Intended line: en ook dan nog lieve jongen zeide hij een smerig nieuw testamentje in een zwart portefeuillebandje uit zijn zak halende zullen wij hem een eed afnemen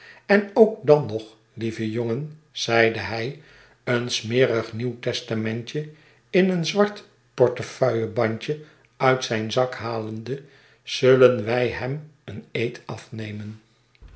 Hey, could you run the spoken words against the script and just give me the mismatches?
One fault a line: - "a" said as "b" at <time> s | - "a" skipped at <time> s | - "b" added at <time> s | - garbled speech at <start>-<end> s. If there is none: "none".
none